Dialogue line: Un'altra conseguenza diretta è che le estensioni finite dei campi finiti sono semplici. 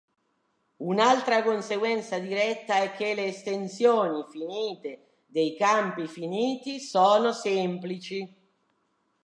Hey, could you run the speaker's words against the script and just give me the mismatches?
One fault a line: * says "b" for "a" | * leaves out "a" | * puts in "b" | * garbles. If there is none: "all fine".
all fine